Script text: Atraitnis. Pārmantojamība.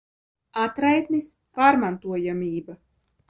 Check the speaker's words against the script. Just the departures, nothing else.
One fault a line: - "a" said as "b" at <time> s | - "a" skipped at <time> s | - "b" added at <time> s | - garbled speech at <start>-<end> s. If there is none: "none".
none